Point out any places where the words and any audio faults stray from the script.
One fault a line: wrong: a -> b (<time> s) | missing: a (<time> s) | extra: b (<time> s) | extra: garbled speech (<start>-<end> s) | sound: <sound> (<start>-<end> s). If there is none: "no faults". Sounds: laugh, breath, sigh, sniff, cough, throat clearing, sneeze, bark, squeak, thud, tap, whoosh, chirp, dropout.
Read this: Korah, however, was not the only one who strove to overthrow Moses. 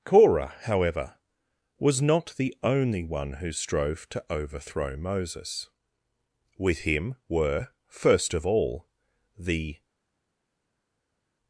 extra: With him were first of all the (6.6 s)